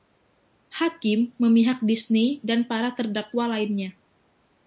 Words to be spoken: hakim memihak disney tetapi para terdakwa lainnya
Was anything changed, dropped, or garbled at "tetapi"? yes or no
yes